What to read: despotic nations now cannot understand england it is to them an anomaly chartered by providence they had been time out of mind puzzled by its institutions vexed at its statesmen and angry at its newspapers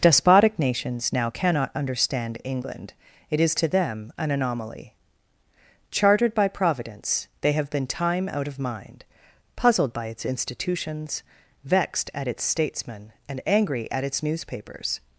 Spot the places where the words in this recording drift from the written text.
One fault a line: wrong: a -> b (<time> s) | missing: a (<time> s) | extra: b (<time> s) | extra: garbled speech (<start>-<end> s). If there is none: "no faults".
wrong: had -> have (7.5 s)